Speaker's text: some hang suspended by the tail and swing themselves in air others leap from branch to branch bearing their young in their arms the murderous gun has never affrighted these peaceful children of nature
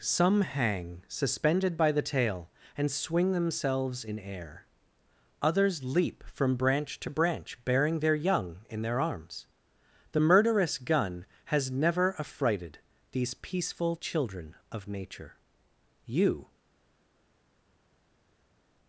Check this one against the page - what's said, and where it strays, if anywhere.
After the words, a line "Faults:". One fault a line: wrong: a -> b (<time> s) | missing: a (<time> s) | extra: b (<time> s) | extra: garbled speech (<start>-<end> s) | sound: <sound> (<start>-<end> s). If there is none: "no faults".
some hang suspended by the tail and swing themselves in air others leap from branch to branch bearing their young in their arms the murderous gun has never affrighted these peaceful children of nature you
Faults:
extra: you (16.0 s)